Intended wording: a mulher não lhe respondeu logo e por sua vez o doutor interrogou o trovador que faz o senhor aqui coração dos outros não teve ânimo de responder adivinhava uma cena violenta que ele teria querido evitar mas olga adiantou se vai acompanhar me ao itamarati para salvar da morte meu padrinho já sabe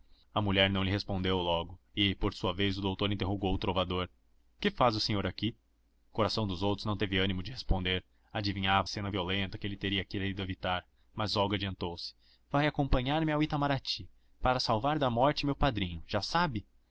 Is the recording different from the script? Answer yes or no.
yes